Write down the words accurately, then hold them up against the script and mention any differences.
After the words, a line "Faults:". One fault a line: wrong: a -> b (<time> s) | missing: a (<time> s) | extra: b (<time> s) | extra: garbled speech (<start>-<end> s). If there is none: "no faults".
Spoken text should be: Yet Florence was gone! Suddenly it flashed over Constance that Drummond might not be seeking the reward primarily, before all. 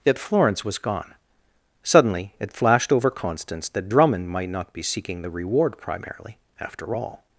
Yet Florence was gone! Suddenly it flashed over Constance that Drummond might not be seeking the reward primarily, after all.
Faults:
wrong: before -> after (6.6 s)